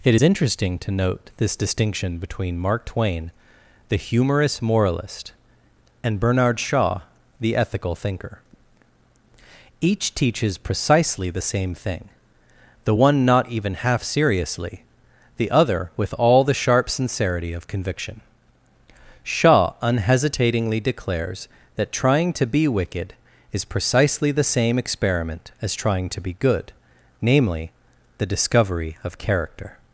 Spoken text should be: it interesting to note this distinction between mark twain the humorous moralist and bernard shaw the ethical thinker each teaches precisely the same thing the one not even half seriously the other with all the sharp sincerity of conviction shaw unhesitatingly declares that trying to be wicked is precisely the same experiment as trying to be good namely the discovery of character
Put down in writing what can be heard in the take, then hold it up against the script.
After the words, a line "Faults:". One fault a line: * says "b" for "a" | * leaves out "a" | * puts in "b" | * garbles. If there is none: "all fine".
it interesting to note this distinction between mark twain the humorous moralist and bernard shaw the ethical thinker each teaches precisely the same thing the one not even half seriously the other with all the sharp sincerity of conviction shaw unhesitatingly declares that trying to be wicked is precisely the same experiment as trying to be good namely the discovery of character
Faults:
all fine